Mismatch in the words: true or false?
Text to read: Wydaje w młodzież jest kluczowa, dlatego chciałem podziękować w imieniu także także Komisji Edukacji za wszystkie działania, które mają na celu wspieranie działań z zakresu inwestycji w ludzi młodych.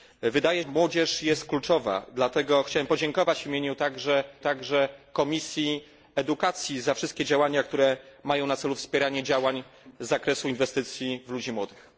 false